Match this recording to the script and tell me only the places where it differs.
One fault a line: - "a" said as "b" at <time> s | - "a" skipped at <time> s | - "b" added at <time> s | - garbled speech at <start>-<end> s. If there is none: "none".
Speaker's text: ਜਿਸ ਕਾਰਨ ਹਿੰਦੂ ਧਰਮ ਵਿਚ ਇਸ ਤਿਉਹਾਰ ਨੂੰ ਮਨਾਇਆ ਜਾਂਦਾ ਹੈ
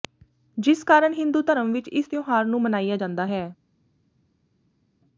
none